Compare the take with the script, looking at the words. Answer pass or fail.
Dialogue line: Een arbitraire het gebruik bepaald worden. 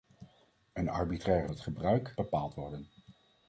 pass